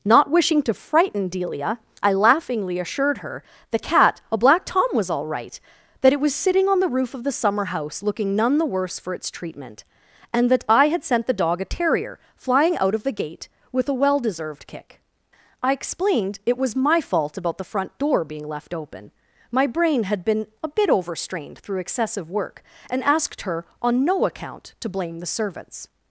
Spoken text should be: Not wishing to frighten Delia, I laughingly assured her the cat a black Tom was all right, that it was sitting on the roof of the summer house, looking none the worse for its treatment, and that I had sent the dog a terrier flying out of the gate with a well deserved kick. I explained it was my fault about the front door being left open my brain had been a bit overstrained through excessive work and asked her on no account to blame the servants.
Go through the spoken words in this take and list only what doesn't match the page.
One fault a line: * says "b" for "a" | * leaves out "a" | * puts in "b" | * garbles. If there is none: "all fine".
all fine